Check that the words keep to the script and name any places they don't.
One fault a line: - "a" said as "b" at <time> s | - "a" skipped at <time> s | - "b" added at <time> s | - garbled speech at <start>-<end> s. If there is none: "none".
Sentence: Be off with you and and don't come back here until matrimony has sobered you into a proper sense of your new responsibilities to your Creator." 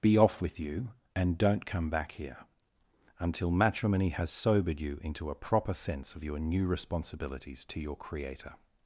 - "and" skipped at 1.4 s